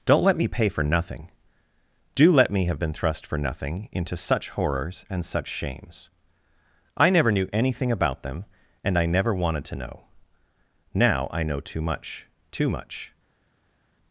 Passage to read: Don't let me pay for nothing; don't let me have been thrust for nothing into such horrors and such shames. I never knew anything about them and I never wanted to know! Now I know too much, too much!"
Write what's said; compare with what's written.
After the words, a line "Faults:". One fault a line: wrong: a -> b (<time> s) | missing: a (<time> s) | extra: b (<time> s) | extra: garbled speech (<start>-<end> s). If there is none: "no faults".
Don't let me pay for nothing; do let me have been thrust for nothing into such horrors and such shames. I never knew anything about them and I never wanted to know! Now I know too much, too much!"
Faults:
wrong: don't -> do (2.1 s)